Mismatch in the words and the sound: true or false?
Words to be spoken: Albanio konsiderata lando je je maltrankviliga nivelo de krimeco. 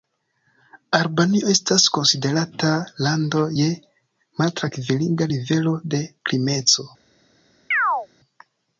true